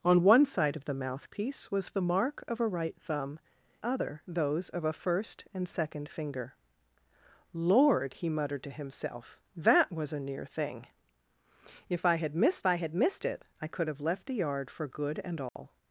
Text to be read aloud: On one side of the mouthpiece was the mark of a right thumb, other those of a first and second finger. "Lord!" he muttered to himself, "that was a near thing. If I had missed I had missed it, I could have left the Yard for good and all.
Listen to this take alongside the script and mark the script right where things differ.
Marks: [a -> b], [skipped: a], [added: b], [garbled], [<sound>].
On one side of the mouthpiece was the mark of a right thumb, other those of a first and second finger. "Lord!" he muttered to himself, "that was a near thing. If I had missed I had missed it, I could have left the Yard for good and all. [dropout]